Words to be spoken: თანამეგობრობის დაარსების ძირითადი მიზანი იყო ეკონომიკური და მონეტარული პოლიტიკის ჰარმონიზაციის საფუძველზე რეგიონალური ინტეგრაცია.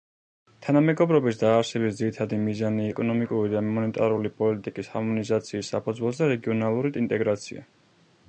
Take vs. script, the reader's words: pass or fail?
fail